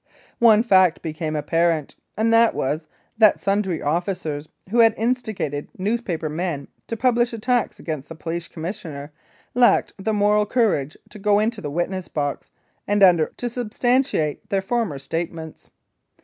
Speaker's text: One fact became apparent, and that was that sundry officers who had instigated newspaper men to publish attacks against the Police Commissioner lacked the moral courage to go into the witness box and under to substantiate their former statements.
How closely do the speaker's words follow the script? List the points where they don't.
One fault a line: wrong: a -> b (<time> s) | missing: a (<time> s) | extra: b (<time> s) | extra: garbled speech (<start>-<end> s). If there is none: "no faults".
no faults